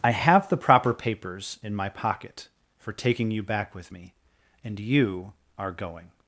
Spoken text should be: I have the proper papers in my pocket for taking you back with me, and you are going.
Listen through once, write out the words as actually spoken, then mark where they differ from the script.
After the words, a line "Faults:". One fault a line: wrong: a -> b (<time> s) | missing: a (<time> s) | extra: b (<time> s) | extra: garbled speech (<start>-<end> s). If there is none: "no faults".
I have the proper papers in my pocket for taking you back with me, and you are going.
Faults:
no faults